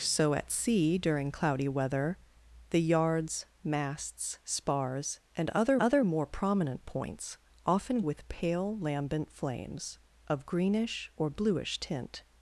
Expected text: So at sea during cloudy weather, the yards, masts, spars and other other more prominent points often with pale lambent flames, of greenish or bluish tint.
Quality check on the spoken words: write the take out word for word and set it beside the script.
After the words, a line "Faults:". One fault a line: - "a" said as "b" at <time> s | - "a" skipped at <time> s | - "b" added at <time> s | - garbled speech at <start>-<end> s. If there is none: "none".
So at sea during cloudy weather, the yards, masts, spars and other other more prominent points often with pale lambent flames, of greenish or bluish tint.
Faults:
none